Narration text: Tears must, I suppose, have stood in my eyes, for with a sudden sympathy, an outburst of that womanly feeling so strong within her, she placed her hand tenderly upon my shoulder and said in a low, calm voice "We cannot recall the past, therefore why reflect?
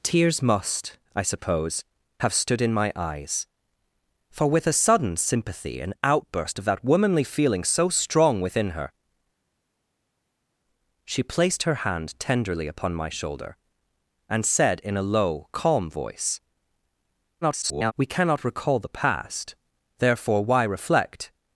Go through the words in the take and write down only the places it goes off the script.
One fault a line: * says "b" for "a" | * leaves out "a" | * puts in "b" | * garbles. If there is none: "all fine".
* garbles